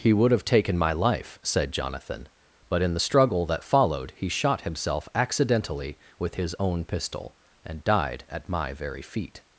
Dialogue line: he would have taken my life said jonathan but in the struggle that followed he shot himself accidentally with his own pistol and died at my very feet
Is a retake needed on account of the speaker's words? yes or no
no